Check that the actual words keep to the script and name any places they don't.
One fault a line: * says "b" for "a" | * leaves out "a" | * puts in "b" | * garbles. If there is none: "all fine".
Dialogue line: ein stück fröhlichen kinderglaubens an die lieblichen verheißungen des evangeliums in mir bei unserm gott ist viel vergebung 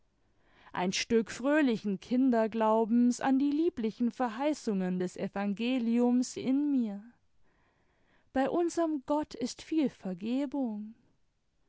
all fine